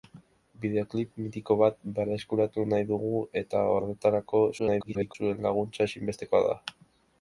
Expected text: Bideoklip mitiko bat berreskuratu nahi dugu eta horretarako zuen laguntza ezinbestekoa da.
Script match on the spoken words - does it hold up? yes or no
no